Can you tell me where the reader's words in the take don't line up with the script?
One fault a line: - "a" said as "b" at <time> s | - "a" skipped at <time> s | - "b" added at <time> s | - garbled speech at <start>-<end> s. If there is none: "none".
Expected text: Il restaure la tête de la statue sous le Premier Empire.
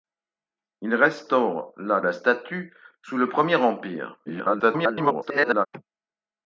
- "tête de" skipped at 2.0 s
- garbled speech at 4.3-5.7 s